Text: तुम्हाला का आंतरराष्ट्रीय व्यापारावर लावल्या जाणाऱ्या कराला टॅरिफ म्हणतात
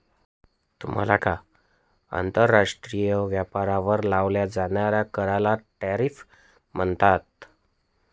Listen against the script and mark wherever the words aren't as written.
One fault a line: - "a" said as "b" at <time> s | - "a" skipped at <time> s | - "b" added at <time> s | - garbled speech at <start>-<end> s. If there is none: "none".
none